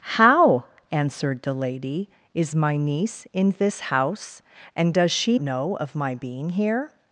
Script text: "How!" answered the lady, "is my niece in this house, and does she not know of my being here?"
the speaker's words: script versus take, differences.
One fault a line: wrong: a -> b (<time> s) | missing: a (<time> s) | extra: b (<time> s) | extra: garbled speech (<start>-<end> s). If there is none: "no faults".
missing: not (5.4 s)